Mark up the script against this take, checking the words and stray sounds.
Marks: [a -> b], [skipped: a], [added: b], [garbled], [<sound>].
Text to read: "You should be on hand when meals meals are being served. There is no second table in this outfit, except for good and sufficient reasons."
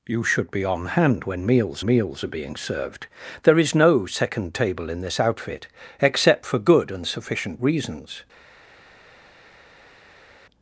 "You should be on hand when meals meals are being served. There is no second table in this outfit, except for good and sufficient reasons."